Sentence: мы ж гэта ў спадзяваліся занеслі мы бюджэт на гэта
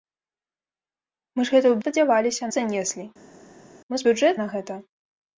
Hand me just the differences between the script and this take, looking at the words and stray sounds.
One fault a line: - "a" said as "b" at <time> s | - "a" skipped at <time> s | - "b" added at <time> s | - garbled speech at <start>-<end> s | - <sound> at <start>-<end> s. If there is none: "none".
none